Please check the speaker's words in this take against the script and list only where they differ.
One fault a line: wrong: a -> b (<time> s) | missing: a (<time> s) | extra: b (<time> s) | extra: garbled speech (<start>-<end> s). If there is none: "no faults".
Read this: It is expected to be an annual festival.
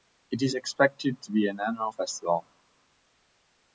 no faults